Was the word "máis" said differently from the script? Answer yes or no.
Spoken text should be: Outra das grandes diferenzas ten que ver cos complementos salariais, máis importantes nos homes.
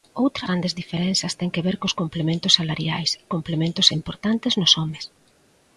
yes